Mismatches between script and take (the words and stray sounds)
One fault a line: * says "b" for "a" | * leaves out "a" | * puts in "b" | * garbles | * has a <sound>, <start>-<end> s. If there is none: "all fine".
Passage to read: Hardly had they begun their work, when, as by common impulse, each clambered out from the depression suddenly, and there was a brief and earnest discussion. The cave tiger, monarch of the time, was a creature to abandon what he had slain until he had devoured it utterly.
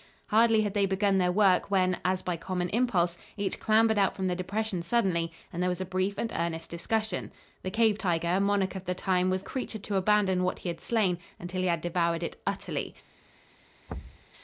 * has a thud, 13.9-14.3 s